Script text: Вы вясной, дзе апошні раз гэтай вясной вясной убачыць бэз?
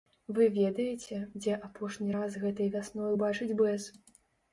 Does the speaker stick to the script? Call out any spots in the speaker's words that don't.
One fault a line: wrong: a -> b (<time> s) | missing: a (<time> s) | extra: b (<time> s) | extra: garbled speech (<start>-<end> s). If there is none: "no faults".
wrong: вясной -> ведаеце (0.5 s)
missing: вясной (3.1 s)